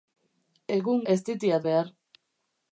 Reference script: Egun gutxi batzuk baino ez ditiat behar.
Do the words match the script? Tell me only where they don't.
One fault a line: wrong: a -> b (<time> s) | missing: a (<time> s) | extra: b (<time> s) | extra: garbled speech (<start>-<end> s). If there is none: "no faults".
missing: gutxi batzuk baino (1.0 s)